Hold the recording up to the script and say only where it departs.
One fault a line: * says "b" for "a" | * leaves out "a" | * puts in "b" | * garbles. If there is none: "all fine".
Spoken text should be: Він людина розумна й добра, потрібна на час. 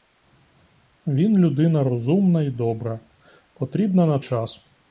all fine